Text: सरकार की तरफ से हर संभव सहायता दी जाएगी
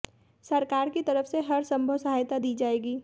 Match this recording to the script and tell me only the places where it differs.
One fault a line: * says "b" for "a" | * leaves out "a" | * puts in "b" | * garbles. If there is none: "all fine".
all fine